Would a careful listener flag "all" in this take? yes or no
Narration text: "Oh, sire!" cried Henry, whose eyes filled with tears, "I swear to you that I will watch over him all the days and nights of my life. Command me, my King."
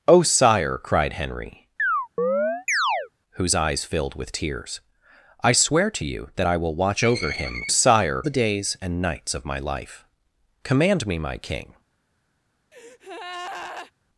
yes